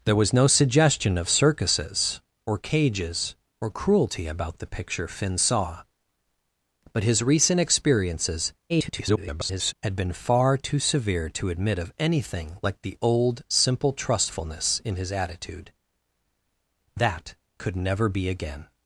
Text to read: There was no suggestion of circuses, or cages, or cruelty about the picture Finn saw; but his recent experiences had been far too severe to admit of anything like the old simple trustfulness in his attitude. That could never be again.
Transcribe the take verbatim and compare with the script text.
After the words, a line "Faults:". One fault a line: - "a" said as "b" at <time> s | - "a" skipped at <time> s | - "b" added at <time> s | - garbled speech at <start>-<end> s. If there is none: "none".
There was no suggestion of circuses, or cages, or cruelty about the picture Finn saw; but his recent experiences [garbled] had been far too severe to admit of anything like the old simple trustfulness in his attitude. That could never be again.
Faults:
- garbled speech at 8.7-9.7 s